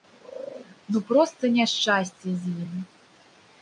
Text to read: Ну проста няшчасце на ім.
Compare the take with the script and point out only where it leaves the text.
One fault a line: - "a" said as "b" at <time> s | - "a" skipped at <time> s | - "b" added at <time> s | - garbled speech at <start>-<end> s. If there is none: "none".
- "на" said as "з" at 2.4 s